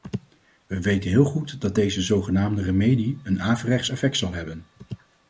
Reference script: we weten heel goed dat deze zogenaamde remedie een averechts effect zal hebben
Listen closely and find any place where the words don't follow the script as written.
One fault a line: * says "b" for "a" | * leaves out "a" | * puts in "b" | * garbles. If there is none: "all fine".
all fine